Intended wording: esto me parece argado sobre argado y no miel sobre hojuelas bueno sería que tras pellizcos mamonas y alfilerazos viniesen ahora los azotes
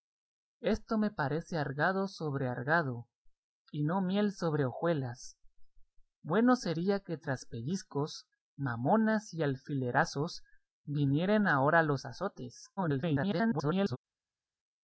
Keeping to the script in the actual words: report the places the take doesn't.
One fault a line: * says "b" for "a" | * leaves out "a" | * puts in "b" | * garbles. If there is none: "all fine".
* garbles